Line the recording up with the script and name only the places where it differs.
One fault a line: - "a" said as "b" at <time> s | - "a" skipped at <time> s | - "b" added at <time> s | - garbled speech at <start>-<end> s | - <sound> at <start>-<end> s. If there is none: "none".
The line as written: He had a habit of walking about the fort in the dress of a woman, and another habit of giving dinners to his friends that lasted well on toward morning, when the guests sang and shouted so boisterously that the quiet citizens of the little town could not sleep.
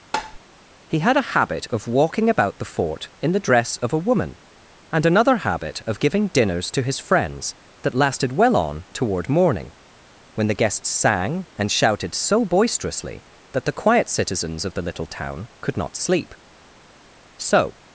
- tap at 0.1-0.4 s
- "So" added at 17.4 s